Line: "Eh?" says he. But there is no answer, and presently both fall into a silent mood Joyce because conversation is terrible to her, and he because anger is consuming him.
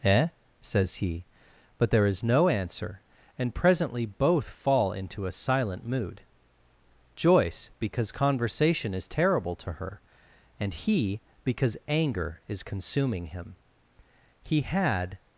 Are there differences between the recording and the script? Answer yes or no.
yes